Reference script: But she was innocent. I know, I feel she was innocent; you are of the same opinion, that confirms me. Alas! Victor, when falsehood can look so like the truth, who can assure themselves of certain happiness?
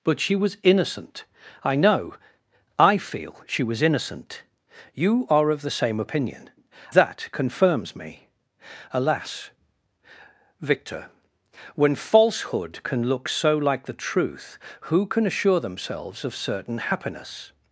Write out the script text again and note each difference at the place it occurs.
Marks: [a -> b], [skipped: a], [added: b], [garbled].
But she was innocent. I know, I feel she was innocent; you are of the same opinion, that confirms me. Alas! Victor, when falsehood can look so like the truth, who can assure themselves of certain happiness?